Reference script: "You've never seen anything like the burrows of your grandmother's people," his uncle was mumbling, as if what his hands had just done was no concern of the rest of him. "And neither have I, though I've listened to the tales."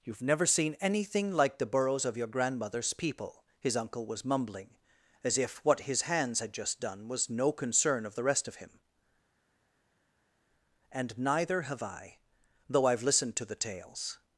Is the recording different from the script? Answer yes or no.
no